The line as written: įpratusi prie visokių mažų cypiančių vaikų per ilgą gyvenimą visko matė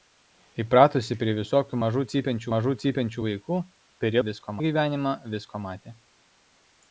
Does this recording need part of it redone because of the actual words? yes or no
yes